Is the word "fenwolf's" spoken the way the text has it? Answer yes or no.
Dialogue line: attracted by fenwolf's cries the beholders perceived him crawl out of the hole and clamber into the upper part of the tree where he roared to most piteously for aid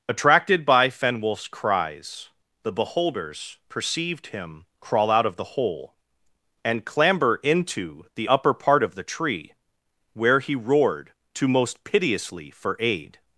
yes